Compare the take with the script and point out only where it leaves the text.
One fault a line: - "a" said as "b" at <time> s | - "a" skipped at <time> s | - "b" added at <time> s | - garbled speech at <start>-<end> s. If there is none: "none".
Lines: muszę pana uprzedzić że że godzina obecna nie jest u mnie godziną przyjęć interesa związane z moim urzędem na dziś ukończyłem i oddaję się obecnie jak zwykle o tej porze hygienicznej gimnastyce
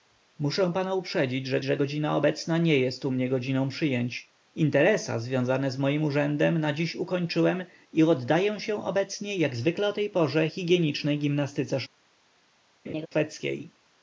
none